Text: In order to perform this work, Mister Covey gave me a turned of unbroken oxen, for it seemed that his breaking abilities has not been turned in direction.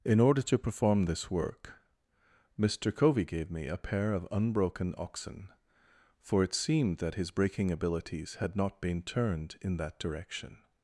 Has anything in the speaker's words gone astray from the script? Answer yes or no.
yes